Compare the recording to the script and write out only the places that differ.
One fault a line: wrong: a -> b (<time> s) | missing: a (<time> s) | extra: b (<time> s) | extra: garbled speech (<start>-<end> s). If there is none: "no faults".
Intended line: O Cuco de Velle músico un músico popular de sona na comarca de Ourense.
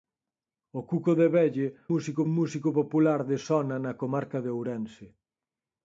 no faults